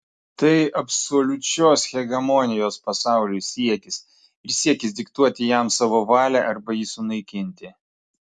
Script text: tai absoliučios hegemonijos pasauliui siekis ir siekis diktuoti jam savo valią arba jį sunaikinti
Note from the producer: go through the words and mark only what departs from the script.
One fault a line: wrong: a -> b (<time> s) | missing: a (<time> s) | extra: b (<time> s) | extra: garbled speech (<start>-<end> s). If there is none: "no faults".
no faults